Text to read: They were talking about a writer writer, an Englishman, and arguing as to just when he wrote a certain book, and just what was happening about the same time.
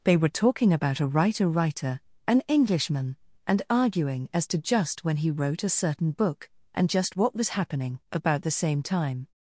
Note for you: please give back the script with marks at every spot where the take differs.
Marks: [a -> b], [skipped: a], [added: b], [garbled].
They were talking about a writer writer, an Englishman, and arguing as to just when he wrote a certain book, and just what was happening about the same time.